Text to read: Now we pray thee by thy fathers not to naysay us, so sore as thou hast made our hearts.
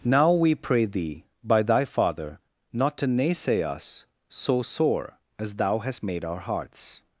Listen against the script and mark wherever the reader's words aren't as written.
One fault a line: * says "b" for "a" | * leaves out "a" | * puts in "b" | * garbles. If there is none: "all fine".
* says "father" for "fathers"